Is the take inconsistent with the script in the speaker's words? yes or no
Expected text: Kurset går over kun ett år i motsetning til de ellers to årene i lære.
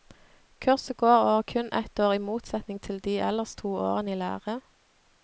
no